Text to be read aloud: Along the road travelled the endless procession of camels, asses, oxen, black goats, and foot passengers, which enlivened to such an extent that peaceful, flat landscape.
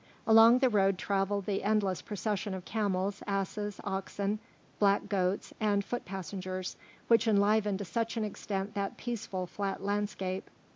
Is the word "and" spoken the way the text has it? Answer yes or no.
yes